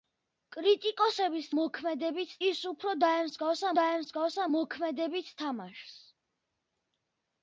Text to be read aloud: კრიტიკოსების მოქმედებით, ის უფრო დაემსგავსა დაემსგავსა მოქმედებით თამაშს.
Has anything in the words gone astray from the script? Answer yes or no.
no